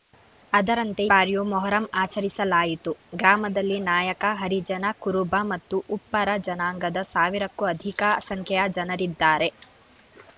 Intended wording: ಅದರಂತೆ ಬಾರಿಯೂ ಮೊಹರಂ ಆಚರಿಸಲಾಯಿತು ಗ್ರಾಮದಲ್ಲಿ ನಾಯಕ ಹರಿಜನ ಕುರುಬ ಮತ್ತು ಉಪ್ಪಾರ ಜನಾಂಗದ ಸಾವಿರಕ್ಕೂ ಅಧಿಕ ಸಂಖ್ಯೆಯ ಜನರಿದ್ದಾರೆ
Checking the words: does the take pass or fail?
pass